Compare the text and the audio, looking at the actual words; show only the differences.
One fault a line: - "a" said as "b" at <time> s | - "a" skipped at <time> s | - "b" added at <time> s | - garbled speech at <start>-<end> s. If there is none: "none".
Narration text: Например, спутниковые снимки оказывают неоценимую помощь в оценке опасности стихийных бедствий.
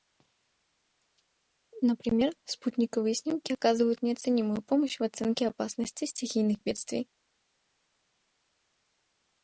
none